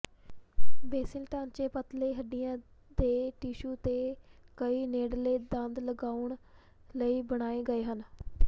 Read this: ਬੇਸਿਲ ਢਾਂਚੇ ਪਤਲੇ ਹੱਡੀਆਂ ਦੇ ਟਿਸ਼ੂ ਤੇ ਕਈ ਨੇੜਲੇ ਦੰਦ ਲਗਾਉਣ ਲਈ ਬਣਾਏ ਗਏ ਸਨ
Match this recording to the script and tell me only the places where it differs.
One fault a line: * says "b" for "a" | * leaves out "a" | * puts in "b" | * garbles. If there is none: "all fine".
* says "ਹਨ" for "ਸਨ"